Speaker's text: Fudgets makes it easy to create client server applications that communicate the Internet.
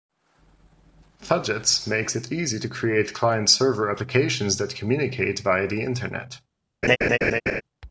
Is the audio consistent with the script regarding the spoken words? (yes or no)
no